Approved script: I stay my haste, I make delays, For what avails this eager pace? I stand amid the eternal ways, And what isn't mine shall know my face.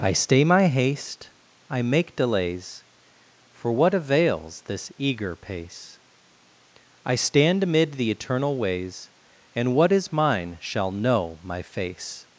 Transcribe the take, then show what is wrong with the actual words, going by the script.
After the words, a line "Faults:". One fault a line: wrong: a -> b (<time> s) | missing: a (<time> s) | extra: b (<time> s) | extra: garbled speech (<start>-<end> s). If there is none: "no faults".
I stay my haste, I make delays, For what avails this eager pace? I stand amid the eternal ways, And what is mine shall know my face.
Faults:
wrong: isn't -> is (9.9 s)